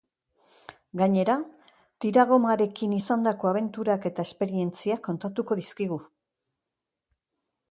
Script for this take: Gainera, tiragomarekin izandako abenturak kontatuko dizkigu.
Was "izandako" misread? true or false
false